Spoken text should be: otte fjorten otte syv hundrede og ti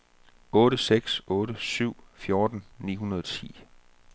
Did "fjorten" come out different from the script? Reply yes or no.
yes